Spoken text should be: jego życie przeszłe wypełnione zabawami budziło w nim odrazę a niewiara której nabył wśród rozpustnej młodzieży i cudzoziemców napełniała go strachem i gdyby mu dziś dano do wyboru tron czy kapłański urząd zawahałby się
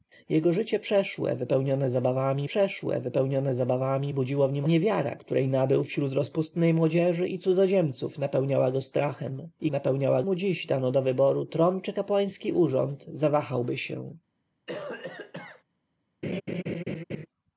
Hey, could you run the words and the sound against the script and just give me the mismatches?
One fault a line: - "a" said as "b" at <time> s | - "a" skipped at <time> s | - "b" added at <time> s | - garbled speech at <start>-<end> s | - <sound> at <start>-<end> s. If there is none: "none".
- "przeszłe wypełnione zabawami" added at 2.4 s
- "odrazę a" skipped at 4.6 s
- "gdyby" said as "napełniała" at 9.7 s
- cough at 14.7-15.6 s
- laugh at 16.2-17.3 s